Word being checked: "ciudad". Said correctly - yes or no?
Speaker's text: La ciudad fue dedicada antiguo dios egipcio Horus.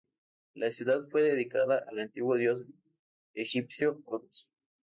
yes